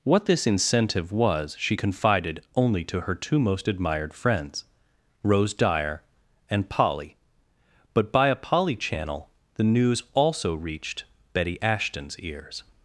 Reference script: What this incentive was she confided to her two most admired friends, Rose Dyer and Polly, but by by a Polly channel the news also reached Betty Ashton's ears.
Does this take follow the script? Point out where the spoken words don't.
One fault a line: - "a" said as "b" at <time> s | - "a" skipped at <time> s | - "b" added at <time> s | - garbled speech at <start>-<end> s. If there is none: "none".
- "only" added at 2.5 s
- "by" skipped at 8.3 s